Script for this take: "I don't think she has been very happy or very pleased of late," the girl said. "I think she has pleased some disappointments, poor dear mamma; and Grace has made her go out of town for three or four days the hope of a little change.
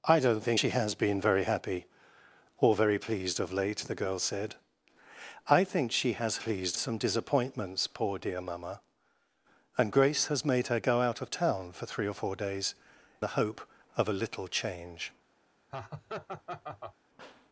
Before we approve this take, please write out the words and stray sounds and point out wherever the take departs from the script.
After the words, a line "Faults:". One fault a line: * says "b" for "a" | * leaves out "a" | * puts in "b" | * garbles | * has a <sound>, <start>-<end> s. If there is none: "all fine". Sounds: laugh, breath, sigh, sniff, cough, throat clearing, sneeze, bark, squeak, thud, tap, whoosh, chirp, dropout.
"I don't think she has been very happy or very pleased of late," the girl said. "I think she has pleased some disappointments, poor dear mamma; and Grace has made her go out of town for three or four days the hope of a little change.
Faults:
* has a laugh, 15.7-17.0 s